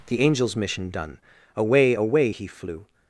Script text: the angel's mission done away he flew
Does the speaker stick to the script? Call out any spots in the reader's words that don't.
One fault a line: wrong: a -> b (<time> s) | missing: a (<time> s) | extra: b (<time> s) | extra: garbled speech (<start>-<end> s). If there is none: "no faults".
extra: away (1.9 s)